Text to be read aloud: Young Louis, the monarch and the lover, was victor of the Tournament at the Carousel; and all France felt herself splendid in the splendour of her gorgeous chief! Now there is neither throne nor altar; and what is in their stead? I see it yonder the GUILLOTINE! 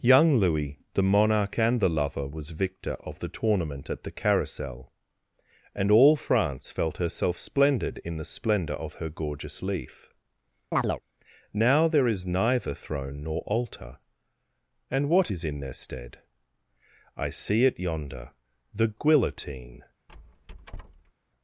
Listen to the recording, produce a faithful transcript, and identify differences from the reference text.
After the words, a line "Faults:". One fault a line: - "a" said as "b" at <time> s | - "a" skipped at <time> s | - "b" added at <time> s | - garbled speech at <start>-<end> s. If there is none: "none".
Young Louis, the monarch and the lover, was victor of the Tournament at the Carousel; and all France felt herself splendid in the splendour of her gorgeous leaf! Now there is neither throne nor altar; and what is in their stead? I see it yonder the GUILLOTINE!
Faults:
- "chief" said as "leaf" at 9.6 s